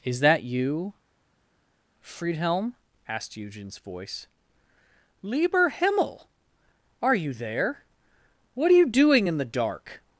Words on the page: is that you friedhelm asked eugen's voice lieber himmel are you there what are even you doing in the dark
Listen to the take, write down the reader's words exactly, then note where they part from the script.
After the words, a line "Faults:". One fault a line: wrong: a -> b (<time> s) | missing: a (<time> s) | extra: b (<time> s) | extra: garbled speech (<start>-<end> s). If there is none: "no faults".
is that you friedhelm asked eugen's voice lieber himmel are you there what are you doing in the dark
Faults:
missing: even (8.8 s)